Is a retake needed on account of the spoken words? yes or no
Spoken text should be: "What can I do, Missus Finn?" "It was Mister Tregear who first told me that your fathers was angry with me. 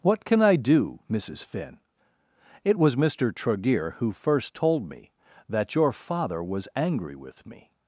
yes